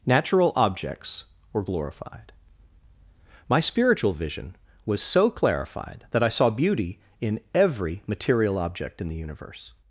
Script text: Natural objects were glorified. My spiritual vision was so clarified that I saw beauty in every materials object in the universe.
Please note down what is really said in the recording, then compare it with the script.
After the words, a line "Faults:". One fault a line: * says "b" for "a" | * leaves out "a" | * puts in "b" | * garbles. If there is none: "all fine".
Natural objects were glorified. My spiritual vision was so clarified that I saw beauty in every material object in the universe.
Faults:
* says "material" for "materials"